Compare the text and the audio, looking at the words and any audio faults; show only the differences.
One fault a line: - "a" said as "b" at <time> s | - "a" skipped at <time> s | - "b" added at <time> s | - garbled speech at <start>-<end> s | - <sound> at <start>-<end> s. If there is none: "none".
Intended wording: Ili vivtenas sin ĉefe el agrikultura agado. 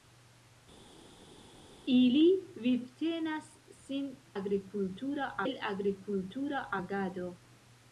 - "ĉefe" said as "agrikultura" at 4.4 s